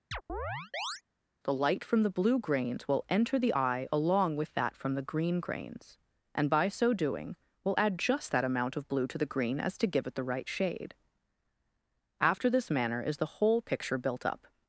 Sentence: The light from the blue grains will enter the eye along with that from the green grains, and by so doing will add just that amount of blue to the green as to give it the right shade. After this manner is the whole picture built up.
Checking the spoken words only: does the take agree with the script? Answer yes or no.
yes